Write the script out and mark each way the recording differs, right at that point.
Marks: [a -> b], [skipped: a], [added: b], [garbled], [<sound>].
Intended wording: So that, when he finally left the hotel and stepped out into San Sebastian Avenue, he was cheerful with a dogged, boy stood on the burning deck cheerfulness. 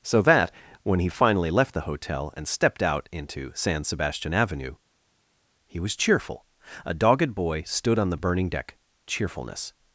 So that, when he finally left the hotel and stepped out into San Sebastian Avenue, he was cheerful [skipped: with] a dogged, boy stood on the burning deck cheerfulness.